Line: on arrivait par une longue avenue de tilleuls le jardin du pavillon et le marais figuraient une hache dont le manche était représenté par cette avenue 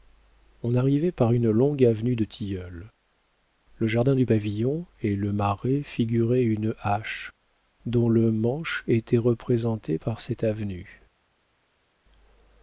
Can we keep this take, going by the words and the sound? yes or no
yes